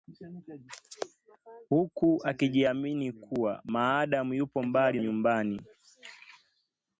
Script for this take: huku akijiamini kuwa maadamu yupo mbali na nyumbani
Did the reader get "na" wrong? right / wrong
wrong